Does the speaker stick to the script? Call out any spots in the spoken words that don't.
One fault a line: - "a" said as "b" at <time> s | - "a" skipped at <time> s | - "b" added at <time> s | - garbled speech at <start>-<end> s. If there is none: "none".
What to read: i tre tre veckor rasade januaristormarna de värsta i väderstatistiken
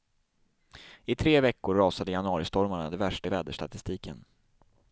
- "tre" skipped at 1.4 s